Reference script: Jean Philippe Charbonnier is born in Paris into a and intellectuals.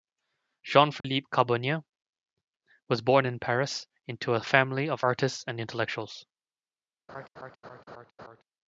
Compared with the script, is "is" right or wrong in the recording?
wrong